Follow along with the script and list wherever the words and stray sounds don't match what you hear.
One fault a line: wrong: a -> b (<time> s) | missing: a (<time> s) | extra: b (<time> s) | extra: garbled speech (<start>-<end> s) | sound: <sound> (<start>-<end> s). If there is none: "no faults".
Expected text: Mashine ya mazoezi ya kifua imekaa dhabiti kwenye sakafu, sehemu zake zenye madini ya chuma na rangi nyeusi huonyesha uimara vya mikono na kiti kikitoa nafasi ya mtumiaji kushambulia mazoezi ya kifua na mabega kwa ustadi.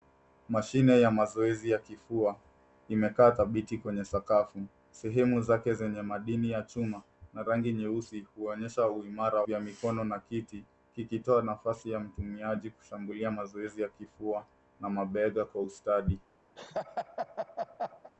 sound: laugh (16.6-18.1 s)